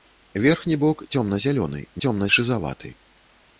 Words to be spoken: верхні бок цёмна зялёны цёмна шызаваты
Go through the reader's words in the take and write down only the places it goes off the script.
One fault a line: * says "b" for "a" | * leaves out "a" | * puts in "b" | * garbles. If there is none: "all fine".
all fine